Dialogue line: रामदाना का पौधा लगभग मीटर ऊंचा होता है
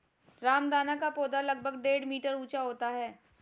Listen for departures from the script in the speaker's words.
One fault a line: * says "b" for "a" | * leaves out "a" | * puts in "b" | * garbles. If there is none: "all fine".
* puts in "डेढ़"